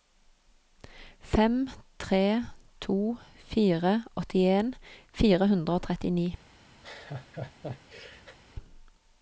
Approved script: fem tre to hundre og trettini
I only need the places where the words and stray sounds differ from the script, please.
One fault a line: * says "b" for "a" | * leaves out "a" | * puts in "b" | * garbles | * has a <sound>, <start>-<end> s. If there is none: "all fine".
* puts in "fire åttien fire"
* has a laugh, 6.8-8.4 s